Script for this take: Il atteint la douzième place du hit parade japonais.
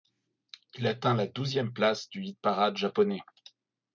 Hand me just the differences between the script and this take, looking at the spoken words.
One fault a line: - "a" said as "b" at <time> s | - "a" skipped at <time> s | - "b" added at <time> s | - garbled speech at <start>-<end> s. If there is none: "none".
none